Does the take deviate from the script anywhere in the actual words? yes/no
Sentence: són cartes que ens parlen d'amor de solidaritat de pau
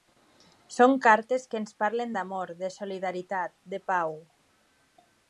no